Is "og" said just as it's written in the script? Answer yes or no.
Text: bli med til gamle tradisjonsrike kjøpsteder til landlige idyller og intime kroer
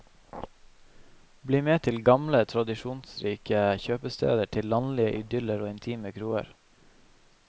yes